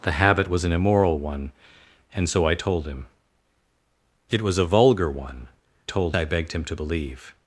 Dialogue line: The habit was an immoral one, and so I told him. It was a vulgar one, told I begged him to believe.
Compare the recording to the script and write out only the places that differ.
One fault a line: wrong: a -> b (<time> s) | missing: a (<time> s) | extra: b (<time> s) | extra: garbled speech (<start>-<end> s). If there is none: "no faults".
no faults